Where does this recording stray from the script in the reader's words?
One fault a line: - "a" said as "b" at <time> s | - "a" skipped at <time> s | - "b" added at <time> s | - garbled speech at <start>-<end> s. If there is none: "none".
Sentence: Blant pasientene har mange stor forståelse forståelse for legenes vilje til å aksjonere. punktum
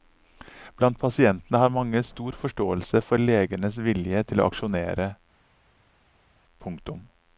- "forståelse" skipped at 3.0 s